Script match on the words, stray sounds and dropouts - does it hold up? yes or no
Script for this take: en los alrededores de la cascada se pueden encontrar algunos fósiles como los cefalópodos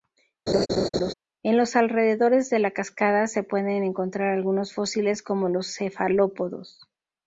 no